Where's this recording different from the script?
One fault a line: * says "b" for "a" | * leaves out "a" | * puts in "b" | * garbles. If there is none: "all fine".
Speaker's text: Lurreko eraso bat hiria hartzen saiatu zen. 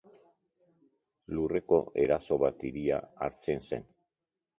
* leaves out "saiatu"